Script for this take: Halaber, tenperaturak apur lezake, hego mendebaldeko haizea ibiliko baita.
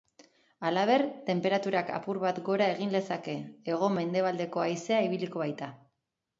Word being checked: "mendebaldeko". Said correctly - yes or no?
yes